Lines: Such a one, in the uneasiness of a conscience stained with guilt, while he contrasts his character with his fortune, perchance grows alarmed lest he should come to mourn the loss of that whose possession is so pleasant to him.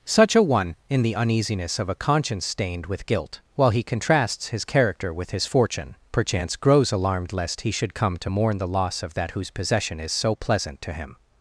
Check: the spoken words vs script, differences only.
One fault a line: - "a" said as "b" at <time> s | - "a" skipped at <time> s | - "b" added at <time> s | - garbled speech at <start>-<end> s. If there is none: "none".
none